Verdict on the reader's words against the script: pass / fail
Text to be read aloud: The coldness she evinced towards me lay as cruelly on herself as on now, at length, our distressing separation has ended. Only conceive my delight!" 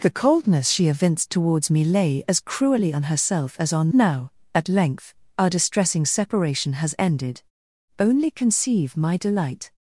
pass